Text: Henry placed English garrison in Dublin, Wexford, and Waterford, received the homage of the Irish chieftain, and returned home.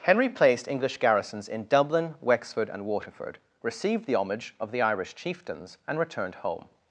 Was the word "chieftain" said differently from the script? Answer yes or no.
yes